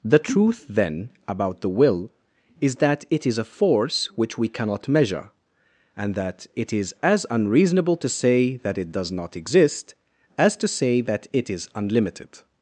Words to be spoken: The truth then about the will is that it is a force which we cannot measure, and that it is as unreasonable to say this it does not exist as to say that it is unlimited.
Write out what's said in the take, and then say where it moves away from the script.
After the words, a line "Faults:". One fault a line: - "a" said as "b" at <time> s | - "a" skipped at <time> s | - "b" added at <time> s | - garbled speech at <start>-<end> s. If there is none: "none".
The truth then about the will is that it is a force which we cannot measure, and that it is as unreasonable to say that it does not exist as to say that it is unlimited.
Faults:
- "this" said as "that" at 8.6 s